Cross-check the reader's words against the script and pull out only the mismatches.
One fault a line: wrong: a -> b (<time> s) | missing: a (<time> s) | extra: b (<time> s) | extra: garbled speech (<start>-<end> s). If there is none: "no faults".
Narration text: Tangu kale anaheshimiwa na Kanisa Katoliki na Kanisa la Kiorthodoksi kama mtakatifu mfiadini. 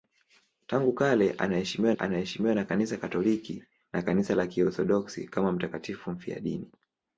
extra: anaheshimiwa (1.9 s)